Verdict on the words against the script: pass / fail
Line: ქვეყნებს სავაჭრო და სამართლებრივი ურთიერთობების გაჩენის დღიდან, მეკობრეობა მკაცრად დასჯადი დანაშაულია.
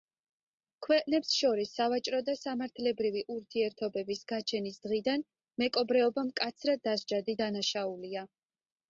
fail